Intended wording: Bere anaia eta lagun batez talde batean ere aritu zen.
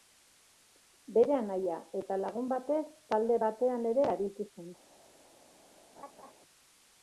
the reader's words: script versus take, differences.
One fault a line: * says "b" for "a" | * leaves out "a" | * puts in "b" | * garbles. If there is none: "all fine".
all fine